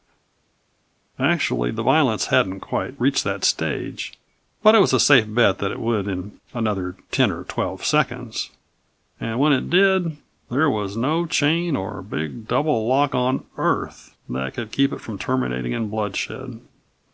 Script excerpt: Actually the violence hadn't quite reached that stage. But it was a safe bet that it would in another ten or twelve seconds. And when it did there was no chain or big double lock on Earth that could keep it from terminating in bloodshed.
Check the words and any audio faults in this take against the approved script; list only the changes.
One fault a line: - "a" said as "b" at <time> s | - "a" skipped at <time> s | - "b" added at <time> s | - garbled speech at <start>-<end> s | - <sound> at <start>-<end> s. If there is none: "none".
none